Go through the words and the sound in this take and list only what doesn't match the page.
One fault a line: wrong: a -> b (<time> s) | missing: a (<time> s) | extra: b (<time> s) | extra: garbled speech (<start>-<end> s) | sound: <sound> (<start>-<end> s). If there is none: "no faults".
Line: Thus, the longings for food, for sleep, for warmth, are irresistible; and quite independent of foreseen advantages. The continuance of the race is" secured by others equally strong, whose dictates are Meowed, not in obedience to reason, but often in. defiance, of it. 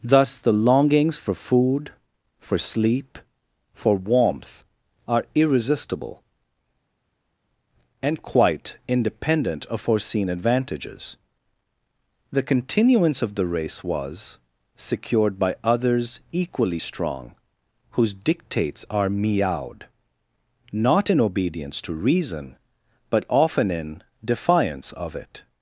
wrong: is -> was (13.8 s)